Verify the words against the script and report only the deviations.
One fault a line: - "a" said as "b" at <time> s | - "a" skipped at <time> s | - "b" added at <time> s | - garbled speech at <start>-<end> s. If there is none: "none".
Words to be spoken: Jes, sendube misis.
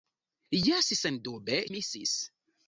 none